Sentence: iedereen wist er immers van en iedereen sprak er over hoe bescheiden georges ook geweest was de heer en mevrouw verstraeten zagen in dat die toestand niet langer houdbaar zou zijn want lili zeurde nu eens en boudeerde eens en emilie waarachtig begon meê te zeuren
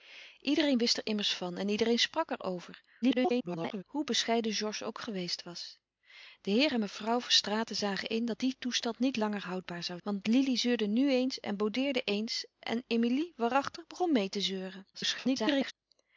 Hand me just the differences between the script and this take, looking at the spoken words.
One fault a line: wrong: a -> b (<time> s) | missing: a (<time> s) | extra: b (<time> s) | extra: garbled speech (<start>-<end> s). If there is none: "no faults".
extra: garbled speech (3.0-3.8 s)
missing: zijn (10.0 s)
extra: garbled speech (14.9-15.7 s)